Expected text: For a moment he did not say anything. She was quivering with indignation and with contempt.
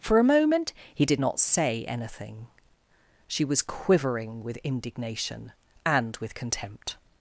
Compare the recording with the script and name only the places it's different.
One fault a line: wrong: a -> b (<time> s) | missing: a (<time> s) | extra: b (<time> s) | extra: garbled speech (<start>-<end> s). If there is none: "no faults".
no faults